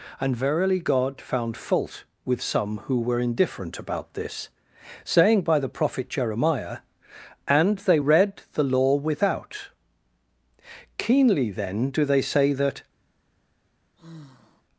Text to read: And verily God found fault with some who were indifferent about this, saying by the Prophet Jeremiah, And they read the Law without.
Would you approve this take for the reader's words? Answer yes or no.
no